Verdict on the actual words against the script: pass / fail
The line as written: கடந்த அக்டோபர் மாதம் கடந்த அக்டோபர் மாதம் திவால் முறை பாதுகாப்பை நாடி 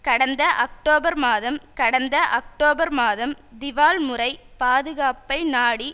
pass